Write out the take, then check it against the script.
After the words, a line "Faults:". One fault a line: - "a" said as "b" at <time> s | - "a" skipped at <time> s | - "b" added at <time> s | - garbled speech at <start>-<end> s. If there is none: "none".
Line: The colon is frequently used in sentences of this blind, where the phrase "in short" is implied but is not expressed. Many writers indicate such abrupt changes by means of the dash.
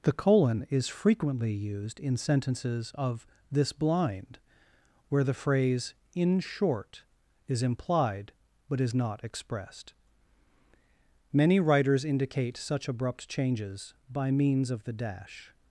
The colon is frequently used in sentences of this blind, where the phrase "in short" is implied but is not expressed. Many writers indicate such abrupt changes by means of the dash.
Faults:
none